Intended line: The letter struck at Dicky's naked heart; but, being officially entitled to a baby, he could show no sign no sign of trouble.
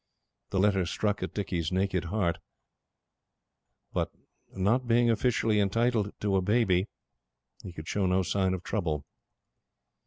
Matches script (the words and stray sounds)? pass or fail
fail